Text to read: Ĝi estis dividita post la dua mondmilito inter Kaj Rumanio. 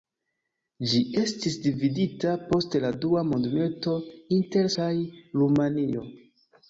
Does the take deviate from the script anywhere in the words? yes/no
no